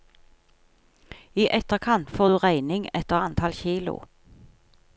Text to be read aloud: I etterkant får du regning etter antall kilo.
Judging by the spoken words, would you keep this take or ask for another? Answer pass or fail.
pass